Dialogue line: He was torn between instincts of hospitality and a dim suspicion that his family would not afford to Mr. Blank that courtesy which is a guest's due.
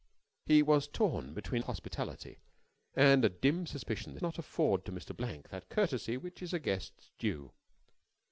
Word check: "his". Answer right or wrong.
wrong